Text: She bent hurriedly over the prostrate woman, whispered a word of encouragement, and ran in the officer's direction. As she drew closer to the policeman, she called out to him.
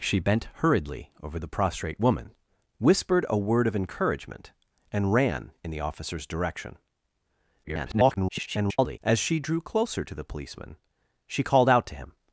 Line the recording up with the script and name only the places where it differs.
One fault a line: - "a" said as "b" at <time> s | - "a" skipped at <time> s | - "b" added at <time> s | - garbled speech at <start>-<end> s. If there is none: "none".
- garbled speech at 7.6-9.0 s